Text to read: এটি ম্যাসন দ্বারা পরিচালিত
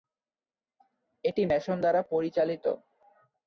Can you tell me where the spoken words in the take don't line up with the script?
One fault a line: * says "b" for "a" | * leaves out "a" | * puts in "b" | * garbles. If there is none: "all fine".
all fine